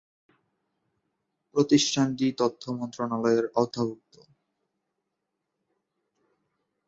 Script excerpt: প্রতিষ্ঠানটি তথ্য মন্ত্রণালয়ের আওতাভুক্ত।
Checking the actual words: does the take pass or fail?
pass